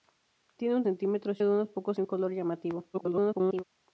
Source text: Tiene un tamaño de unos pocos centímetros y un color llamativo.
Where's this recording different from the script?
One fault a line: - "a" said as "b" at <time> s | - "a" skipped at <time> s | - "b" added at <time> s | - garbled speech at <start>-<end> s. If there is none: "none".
- "tamaño" said as "centímetros" at 0.8 s
- "centímetros" skipped at 2.0 s
- garbled speech at 2.9-3.6 s